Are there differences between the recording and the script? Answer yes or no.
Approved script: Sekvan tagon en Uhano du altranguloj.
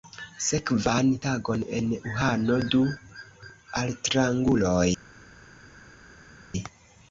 no